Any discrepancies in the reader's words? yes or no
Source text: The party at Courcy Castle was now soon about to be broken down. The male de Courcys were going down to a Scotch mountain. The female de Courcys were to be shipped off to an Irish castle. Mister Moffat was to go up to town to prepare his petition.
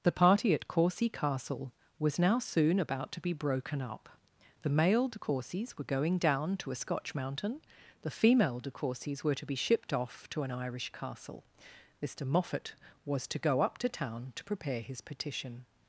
yes